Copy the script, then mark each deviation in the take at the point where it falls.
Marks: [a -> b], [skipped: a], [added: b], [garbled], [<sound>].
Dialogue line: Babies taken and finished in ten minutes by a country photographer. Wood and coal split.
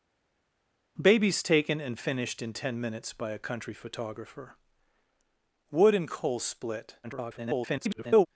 Babies taken and finished in ten minutes by a country photographer. Wood and coal split. [garbled]